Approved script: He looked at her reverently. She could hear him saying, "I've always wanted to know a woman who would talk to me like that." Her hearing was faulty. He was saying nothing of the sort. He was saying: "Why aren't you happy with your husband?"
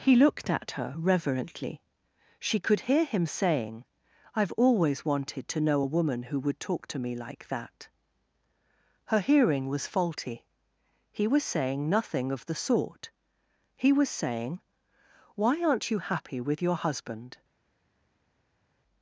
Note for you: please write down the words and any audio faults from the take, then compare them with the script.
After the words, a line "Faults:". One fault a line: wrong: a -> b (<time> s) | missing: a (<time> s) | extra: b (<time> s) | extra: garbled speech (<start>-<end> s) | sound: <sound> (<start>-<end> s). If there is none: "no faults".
He looked at her reverently. She could hear him saying, "I've always wanted to know a woman who would talk to me like that." Her hearing was faulty. He was saying nothing of the sort. He was saying: "Why aren't you happy with your husband?"
Faults:
no faults